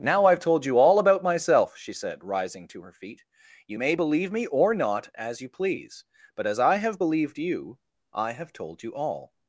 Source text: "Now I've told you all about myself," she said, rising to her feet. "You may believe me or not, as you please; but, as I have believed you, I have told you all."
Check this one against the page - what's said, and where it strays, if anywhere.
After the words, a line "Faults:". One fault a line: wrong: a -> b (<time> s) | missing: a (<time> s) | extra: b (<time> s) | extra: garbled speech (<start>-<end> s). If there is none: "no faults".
"Now I've told you all about myself," she said, rising to her feet. "You may believe me or not, as you please; but, as I have believed you, I have told you all."
Faults:
no faults